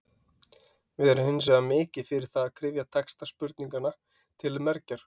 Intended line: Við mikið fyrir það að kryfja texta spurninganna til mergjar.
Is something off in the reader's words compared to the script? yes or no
yes